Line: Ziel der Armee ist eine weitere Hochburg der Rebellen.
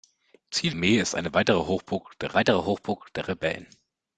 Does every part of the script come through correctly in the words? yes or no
no